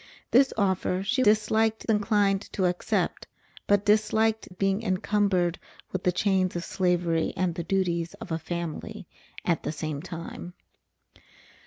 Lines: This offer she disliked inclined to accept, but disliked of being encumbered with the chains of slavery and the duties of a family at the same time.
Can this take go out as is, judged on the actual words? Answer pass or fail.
pass